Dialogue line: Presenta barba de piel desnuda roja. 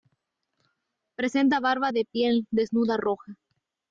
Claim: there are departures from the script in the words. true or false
false